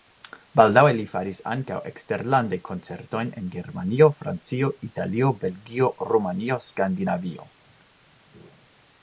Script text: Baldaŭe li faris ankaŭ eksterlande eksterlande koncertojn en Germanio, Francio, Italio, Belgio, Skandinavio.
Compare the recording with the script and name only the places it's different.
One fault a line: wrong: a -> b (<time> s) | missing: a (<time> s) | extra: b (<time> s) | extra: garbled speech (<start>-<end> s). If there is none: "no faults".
missing: eksterlande (2.6 s)
extra: Rumanio (6.1 s)